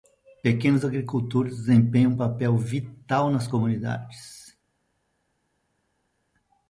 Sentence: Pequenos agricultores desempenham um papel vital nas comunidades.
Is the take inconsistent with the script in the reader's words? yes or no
no